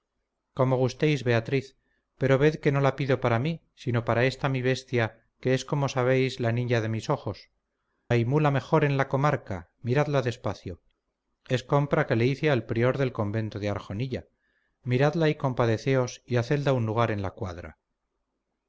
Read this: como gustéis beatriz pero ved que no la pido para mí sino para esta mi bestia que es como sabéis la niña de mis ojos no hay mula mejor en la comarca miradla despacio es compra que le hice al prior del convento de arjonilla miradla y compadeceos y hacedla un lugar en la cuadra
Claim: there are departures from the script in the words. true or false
true